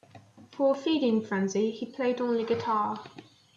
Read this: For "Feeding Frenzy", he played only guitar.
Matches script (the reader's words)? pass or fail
pass